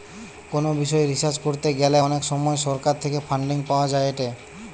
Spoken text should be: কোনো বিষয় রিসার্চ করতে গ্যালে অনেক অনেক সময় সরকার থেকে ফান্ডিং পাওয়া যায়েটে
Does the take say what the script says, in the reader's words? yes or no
no